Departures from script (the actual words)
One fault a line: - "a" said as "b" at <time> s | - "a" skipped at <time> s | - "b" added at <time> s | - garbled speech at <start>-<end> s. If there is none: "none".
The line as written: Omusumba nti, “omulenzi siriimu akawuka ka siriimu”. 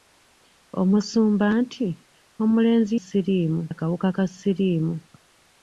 none